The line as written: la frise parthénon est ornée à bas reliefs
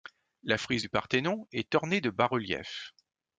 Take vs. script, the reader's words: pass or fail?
fail